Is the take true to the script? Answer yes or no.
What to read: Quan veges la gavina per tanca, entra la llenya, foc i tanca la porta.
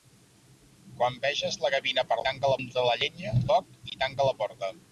yes